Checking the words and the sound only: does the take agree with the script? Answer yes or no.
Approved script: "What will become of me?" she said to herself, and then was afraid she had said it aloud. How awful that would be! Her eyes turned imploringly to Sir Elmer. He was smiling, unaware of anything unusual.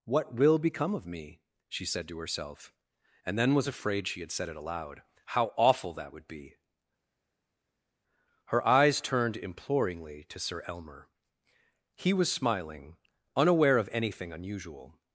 yes